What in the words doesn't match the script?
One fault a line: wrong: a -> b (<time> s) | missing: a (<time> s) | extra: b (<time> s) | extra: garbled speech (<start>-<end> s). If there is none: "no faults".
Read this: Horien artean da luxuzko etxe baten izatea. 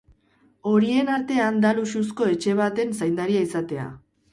extra: zaindaria (3.0 s)